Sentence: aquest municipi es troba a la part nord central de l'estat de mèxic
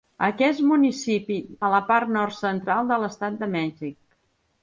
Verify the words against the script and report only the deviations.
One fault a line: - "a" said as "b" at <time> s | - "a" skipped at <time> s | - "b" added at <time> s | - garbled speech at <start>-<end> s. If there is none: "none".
- "es troba" skipped at 1.4 s